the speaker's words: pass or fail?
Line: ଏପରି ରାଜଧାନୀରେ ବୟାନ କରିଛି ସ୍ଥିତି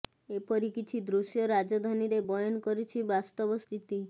fail